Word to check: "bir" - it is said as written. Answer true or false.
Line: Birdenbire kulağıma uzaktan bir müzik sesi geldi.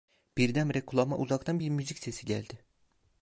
true